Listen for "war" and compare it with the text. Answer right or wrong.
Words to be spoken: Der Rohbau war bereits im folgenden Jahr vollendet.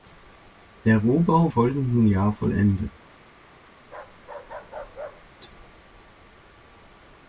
wrong